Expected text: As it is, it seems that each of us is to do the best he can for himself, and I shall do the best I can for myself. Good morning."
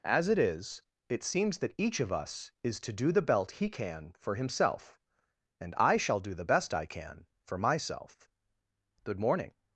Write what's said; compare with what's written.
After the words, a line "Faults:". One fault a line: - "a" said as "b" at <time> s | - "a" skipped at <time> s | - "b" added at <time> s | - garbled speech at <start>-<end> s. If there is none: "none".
As it is, it seems that each of us is to do the belt he can for himself, and I shall do the best I can for myself. Good morning."
Faults:
- "best" said as "belt" at 3.2 s